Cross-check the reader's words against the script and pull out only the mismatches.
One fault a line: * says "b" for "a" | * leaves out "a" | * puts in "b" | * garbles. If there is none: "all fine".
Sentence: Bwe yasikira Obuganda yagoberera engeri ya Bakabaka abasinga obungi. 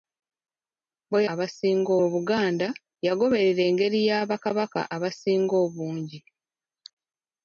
* says "abasinga" for "yasikira"